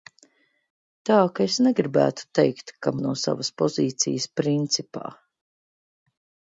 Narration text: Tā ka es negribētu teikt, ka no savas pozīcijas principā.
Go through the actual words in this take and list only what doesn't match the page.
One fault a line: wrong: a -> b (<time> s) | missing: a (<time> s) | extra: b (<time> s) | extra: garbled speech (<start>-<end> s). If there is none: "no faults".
no faults